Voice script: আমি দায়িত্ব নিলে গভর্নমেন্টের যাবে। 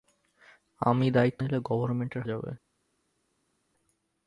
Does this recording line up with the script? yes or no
yes